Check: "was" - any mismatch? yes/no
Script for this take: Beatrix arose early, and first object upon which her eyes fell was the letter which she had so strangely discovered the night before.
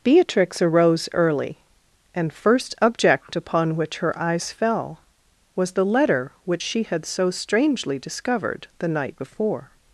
no